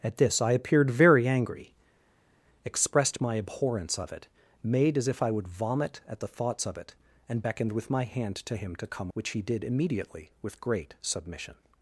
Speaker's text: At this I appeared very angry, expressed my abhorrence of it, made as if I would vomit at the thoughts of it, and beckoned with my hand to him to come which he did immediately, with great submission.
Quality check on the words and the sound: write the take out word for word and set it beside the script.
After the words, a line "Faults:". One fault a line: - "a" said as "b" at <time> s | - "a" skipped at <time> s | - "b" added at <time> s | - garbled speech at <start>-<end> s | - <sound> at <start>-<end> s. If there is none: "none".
At this I appeared very angry, expressed my abhorrence of it, made as if I would vomit at the thoughts of it, and beckoned with my hand to him to come which he did immediately, with great submission.
Faults:
none